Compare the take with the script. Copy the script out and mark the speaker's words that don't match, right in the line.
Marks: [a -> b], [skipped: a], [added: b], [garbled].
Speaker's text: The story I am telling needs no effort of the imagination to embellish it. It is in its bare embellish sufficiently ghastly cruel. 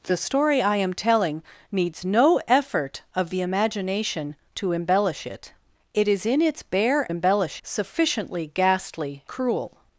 The story I am telling needs no effort of the imagination to embellish it. It is in its bare embellish sufficiently ghastly cruel.